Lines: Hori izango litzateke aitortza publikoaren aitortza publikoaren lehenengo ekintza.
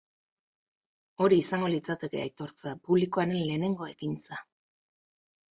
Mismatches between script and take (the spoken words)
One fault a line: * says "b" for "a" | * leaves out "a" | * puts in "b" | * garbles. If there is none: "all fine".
* leaves out "aitortza publikoaren"